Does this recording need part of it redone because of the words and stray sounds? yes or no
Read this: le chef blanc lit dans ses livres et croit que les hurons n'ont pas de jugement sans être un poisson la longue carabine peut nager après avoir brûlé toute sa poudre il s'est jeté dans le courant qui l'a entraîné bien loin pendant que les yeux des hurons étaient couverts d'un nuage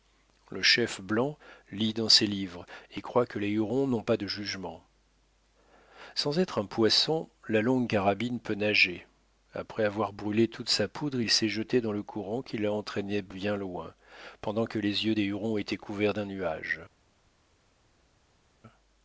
no